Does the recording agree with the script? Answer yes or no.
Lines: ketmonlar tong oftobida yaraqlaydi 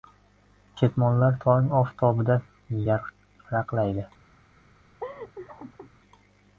yes